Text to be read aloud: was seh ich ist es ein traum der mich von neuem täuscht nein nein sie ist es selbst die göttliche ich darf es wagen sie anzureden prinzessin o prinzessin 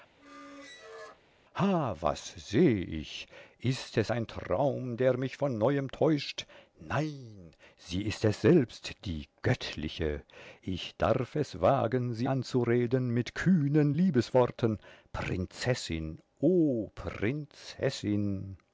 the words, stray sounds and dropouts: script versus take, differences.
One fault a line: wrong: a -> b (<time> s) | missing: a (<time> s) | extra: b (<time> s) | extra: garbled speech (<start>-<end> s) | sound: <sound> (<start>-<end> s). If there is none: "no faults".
sound: squeak (0.2-1.2 s)
missing: nein (7.5 s)
extra: mit kühnen liebesworten (13.1 s)